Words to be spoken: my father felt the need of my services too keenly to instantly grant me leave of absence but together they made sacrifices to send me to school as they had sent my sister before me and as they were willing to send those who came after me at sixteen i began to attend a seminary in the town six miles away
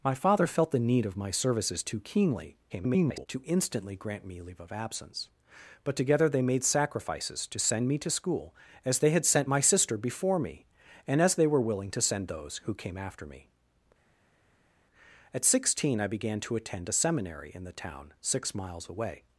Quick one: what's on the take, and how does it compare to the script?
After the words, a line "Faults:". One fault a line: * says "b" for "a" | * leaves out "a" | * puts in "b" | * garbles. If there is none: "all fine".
my father felt the need of my services too keenly [garbled] to instantly grant me leave of absence but together they made sacrifices to send me to school as they had sent my sister before me and as they were willing to send those who came after me at sixteen i began to attend a seminary in the town six miles away
Faults:
* garbles